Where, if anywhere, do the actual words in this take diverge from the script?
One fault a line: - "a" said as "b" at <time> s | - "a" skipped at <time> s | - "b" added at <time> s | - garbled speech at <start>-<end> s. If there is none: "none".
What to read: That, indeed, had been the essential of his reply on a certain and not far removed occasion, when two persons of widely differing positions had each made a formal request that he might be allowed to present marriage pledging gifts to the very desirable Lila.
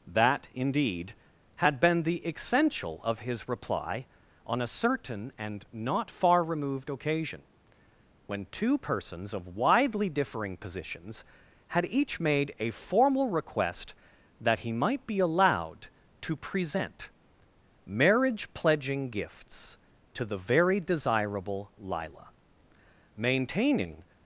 - "Maintaining" added at 23.1 s